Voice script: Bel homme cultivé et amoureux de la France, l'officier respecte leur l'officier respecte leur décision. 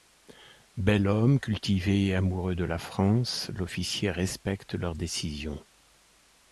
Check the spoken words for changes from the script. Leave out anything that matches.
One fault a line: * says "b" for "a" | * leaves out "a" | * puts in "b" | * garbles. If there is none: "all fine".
* leaves out "l'officier respecte leur"